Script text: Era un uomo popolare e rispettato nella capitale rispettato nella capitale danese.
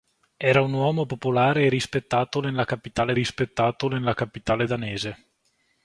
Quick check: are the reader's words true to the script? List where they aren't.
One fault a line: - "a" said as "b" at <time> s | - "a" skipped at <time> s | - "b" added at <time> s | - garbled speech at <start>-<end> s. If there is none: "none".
none